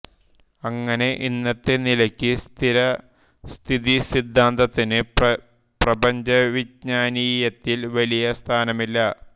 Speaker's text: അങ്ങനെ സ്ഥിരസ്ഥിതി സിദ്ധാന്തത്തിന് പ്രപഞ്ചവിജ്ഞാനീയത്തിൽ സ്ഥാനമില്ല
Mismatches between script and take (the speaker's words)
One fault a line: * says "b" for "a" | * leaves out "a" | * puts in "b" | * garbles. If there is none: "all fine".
* puts in "ഇന്നത്തെ നിലയ്ക്ക്"
* puts in "വലിയ"